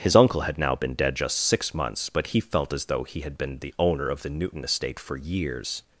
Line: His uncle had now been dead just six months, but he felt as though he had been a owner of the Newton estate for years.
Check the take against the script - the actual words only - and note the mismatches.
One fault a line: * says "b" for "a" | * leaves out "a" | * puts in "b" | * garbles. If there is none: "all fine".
* says "the" for "a"